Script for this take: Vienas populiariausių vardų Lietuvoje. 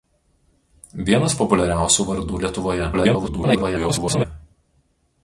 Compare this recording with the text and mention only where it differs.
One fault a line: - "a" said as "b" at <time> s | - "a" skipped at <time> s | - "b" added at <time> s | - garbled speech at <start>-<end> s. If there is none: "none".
- garbled speech at 2.9-4.3 s